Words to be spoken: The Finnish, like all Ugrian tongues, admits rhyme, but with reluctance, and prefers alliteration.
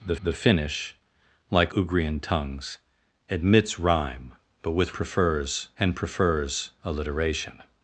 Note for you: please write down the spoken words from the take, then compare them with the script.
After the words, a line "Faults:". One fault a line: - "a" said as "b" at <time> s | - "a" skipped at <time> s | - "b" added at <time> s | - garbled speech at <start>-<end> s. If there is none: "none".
The the Finnish, like Ugrian tongues, admits rhyme, but with prefers, and prefers alliteration.
Faults:
- "the" added at 0.2 s
- "all" skipped at 1.7 s
- "reluctance" said as "prefers" at 4.9 s